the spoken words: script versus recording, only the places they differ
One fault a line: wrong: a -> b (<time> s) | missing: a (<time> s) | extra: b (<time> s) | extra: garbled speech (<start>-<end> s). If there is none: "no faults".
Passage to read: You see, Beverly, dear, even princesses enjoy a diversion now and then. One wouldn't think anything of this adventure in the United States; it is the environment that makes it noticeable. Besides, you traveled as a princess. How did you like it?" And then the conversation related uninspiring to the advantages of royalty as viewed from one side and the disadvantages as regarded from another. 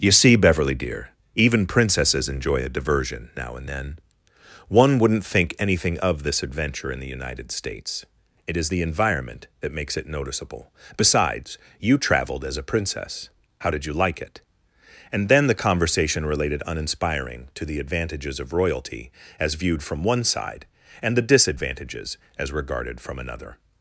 no faults